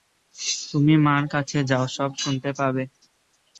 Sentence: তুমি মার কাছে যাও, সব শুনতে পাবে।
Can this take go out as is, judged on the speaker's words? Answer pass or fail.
pass